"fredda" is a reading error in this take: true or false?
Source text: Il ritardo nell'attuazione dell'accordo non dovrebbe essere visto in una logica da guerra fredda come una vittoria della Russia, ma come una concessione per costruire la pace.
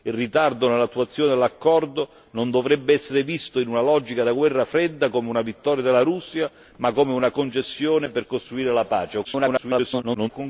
false